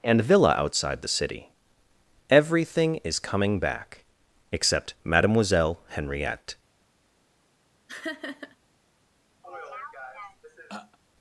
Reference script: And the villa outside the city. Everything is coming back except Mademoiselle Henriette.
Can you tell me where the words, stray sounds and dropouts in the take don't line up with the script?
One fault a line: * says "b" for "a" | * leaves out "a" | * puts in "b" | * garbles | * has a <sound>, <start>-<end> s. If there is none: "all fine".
* leaves out "the"
* has a laugh, 7.9-8.6 s
* has a throat clearing, 9.4-11.0 s